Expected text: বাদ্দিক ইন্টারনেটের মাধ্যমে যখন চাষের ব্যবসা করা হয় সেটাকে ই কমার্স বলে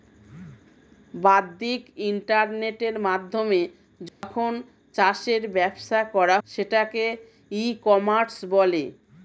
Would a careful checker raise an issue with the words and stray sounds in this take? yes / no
yes